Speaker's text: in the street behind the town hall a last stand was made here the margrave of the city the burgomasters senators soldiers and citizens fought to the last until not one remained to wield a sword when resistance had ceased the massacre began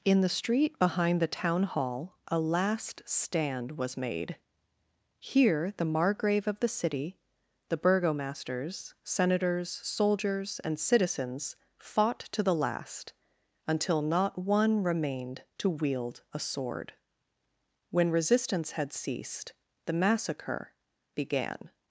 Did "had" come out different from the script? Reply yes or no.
no